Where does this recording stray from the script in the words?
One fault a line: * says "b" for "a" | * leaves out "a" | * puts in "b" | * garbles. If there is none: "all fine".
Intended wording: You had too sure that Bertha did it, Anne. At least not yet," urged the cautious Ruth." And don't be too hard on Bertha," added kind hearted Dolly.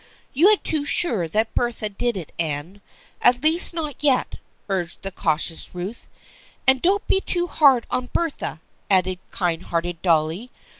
all fine